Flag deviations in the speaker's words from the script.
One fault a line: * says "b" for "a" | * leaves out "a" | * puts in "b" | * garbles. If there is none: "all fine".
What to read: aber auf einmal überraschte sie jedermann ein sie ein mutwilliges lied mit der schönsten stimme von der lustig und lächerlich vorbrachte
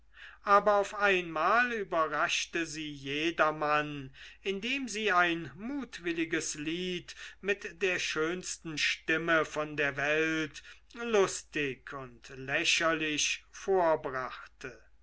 * says "indem" for "ein"
* puts in "welt"